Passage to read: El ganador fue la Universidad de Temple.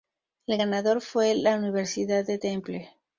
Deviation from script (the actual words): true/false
false